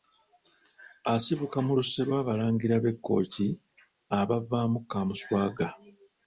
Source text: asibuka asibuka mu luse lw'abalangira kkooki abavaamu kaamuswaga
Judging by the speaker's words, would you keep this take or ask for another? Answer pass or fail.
fail